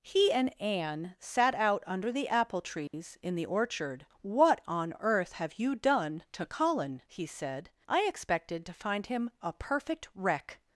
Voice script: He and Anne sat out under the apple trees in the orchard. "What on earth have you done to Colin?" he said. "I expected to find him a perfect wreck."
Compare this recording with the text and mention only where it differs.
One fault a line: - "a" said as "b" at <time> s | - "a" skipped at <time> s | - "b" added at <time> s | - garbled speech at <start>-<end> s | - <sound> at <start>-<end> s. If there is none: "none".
- dropout at 2.9-2.9 s